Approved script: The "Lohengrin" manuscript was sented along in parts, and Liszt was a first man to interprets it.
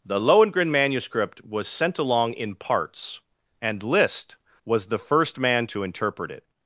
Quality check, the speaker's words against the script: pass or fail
fail